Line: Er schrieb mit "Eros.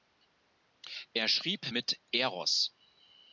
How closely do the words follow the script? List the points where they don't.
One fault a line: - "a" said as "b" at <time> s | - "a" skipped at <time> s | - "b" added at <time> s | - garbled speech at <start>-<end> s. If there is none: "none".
none